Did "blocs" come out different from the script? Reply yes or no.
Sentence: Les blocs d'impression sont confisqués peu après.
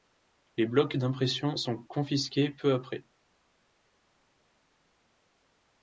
no